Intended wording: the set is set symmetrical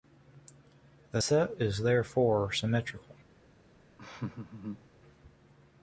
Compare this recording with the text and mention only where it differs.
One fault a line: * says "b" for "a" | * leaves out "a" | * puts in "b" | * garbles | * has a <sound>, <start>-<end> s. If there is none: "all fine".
* says "therefore" for "set"
* has a laugh, 4.0-4.9 s